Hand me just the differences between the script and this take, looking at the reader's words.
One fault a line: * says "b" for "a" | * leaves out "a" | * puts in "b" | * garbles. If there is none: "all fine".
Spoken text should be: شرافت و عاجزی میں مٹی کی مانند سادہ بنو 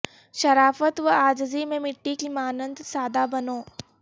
all fine